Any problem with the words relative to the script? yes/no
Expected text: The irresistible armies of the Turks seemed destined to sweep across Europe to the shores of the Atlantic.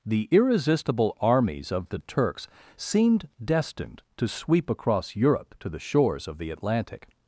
no